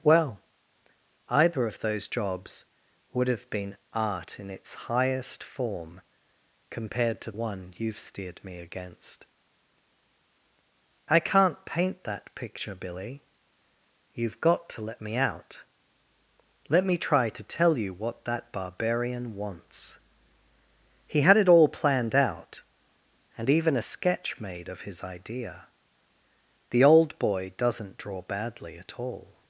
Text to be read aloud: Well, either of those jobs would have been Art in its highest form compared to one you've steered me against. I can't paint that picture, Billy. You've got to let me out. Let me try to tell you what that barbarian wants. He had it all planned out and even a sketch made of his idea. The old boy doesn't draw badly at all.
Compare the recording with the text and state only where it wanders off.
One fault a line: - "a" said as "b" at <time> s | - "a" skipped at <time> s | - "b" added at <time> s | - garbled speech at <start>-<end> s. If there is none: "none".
none